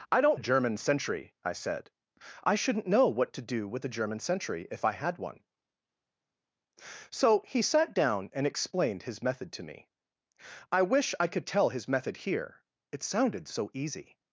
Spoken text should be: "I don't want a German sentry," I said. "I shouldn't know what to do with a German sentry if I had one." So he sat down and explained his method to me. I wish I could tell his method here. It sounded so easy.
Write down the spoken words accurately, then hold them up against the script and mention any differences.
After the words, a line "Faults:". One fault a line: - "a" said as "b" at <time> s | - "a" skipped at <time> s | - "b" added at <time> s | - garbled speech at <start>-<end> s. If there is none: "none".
"I don't a German sentry," I said. "I shouldn't know what to do with a German sentry if I had one." So he sat down and explained his method to me. I wish I could tell his method here. It sounded so easy.
Faults:
- "want" skipped at 0.4 s